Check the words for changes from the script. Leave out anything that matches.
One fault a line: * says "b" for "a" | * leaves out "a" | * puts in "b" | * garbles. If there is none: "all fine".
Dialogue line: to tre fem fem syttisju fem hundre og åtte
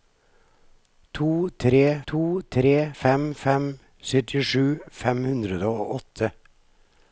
* puts in "to tre"